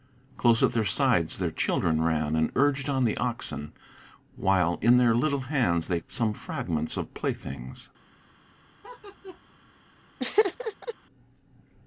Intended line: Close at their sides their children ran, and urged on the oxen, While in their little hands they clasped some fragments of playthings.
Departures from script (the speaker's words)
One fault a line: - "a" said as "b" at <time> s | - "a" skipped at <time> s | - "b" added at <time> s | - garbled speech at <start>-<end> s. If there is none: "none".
- "clasped" skipped at 6.0 s